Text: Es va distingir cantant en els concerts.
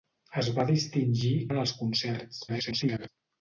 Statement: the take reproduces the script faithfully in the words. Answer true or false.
false